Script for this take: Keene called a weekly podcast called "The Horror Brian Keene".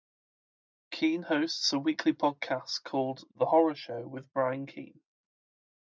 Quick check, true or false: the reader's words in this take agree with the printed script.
false